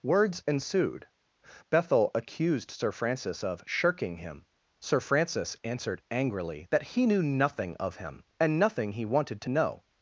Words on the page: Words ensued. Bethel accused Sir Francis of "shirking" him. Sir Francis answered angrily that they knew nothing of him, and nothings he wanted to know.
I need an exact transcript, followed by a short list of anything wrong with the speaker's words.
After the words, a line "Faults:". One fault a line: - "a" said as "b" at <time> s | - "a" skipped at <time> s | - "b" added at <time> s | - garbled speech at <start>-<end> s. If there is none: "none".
Words ensued. Bethel accused Sir Francis of "shirking" him. Sir Francis answered angrily that he knew nothing of him, and nothing he wanted to know.
Faults:
- "they" said as "he" at 6.8 s
- "nothings" said as "nothing" at 8.6 s